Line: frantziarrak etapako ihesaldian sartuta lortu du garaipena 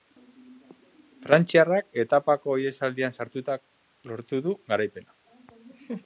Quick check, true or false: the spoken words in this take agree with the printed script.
true